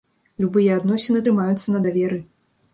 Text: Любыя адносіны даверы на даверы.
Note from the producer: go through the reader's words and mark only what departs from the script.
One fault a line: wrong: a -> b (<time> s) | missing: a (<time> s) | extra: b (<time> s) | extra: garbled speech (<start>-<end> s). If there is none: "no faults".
wrong: даверы -> трымаюцца (1.3 s)